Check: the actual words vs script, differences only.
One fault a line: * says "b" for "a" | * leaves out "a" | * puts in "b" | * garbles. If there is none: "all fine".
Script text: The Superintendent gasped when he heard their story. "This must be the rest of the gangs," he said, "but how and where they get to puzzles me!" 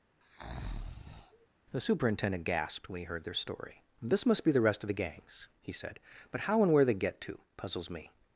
all fine